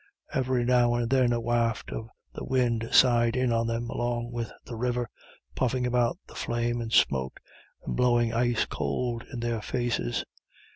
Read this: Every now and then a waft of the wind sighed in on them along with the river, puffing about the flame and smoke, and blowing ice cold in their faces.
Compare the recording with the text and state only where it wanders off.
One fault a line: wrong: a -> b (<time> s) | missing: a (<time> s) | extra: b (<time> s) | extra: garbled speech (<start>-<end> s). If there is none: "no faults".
no faults